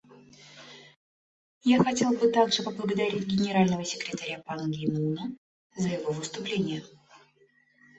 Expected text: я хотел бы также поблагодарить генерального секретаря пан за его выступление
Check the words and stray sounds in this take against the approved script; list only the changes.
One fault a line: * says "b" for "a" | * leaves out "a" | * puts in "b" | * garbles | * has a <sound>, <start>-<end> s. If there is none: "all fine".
* puts in "ги муна"